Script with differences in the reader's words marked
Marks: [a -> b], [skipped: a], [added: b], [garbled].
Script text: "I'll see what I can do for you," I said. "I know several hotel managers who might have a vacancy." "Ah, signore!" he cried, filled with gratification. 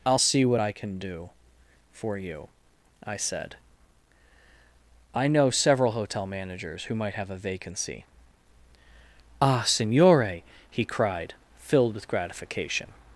"I'll see what I can do for you," I said. "I know several hotel managers who might have a vacancy." "Ah, signore!" he cried, filled with gratification.